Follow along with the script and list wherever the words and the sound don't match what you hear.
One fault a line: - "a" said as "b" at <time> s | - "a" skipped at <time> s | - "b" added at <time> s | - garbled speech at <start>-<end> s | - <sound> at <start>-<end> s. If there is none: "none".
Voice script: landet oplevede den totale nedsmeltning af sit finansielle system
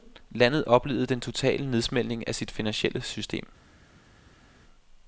none